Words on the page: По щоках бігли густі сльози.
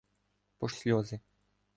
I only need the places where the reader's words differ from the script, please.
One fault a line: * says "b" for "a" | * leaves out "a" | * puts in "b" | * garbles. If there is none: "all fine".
* leaves out "щоках бігли густі"